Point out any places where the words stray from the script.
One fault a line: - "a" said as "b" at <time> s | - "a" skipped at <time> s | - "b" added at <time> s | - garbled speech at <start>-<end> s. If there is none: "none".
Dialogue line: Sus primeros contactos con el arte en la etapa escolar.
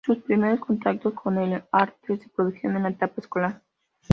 - "se produjeron" added at 2.2 s